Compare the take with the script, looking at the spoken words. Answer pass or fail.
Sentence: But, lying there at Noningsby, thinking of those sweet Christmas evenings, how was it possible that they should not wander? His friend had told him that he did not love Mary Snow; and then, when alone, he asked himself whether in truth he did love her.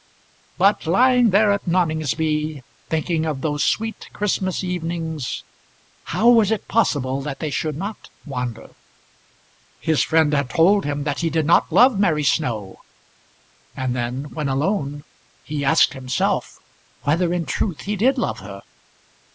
pass